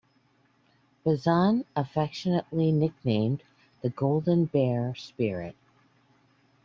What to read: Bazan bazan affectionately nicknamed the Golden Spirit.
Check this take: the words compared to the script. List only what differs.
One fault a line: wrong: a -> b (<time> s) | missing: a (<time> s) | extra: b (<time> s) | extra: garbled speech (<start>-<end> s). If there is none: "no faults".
missing: bazan (1.6 s)
extra: Bear (4.5 s)